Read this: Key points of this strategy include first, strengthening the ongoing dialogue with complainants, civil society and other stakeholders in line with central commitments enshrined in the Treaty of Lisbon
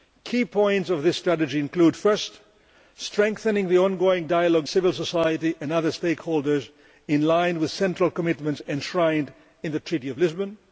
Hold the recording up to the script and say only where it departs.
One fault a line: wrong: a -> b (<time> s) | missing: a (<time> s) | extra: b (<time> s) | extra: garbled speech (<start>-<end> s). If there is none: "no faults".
missing: with complainants (4.7 s)